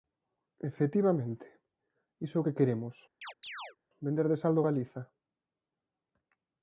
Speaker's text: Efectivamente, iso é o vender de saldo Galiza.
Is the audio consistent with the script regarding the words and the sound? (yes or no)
no